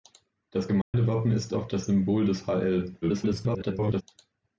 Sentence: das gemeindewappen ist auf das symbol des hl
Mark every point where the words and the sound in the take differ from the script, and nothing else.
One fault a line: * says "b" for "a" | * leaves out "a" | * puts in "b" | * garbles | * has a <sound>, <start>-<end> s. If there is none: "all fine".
* has a dropout, 0.8-0.9 s
* garbles